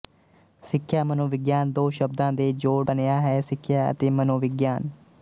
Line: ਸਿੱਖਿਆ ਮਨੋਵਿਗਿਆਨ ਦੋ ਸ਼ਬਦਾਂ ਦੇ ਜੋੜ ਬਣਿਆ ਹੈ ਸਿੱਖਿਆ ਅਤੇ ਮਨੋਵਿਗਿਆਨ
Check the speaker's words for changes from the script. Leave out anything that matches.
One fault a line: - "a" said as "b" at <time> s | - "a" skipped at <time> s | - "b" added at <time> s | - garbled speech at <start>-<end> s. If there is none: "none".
none